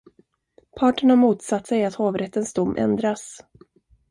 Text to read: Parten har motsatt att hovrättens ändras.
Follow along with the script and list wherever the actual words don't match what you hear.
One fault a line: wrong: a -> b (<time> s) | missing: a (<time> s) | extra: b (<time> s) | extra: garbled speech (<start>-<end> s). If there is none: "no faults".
extra: sig (1.6 s)
extra: dom (2.5 s)